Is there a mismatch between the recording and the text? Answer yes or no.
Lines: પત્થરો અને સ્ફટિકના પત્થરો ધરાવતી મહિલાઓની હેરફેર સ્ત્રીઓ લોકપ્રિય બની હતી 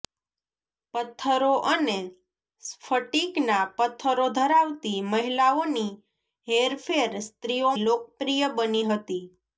no